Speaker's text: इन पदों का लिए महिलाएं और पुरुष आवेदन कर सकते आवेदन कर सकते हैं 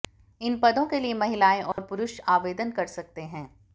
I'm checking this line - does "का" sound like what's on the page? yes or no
no